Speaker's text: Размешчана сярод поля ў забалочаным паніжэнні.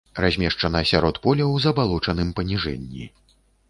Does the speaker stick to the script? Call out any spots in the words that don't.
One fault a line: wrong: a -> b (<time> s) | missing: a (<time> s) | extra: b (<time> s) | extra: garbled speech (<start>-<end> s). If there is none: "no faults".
no faults